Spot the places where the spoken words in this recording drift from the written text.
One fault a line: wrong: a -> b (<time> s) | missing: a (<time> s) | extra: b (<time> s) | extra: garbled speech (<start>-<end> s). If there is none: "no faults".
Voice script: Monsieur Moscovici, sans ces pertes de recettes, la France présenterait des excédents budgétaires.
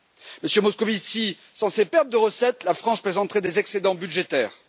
no faults